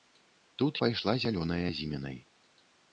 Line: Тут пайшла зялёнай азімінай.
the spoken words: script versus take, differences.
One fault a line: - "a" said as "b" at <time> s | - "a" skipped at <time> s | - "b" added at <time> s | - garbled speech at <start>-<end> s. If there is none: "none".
none